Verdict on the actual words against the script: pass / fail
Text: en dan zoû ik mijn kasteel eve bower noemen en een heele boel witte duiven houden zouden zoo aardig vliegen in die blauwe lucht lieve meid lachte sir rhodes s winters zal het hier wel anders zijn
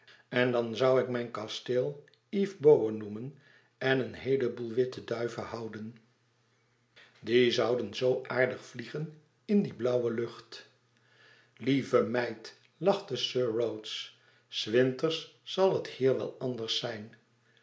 fail